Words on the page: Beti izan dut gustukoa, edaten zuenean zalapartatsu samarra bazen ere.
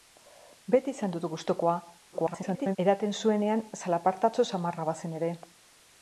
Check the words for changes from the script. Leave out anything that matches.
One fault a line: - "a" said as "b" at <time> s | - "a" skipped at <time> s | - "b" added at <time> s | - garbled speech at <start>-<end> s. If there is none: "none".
- garbled speech at 2.1-2.8 s